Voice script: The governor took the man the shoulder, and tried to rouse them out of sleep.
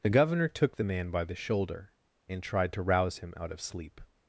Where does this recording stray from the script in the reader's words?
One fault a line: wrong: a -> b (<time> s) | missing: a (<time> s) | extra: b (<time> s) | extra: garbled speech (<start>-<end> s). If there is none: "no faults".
extra: by (1.1 s)
wrong: them -> him (3.2 s)